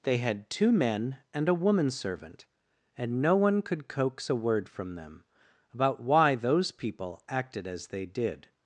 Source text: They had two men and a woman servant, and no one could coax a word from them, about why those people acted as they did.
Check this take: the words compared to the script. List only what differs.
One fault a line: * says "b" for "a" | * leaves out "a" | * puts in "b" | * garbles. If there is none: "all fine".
all fine